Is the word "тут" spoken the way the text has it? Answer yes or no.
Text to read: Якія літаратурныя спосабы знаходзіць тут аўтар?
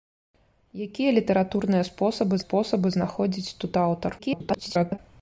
yes